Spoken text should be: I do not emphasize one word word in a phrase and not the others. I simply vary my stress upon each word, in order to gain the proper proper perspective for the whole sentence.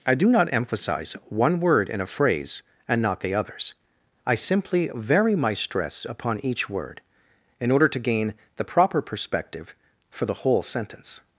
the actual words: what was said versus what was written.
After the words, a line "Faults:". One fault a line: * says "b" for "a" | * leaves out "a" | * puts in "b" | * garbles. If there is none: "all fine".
I do not emphasize one word in a phrase and not the others. I simply vary my stress upon each word, in order to gain the proper perspective for the whole sentence.
Faults:
* leaves out "word"
* leaves out "proper"